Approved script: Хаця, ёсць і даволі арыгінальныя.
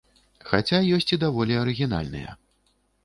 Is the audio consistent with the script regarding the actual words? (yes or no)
yes